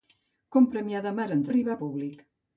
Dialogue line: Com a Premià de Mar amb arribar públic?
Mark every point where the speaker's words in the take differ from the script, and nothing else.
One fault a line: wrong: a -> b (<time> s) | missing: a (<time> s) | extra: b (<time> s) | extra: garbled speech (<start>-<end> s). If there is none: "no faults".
no faults